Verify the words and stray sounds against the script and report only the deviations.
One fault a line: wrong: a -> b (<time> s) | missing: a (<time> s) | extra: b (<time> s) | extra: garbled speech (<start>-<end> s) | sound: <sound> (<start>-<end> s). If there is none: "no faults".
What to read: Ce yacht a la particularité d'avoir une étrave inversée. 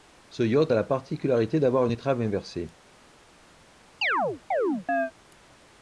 sound: chirp (4.0-5.1 s)